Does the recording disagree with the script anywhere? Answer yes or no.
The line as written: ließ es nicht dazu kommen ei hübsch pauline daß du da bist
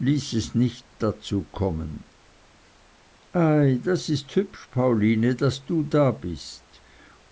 yes